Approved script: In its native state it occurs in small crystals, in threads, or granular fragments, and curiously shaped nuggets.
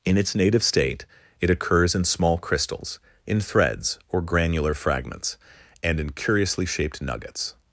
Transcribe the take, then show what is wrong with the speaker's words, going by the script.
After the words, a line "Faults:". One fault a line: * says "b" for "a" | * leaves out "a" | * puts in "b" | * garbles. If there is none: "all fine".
In its native state it occurs in small crystals, in threads, or granular fragments, and in curiously shaped nuggets.
Faults:
* puts in "in"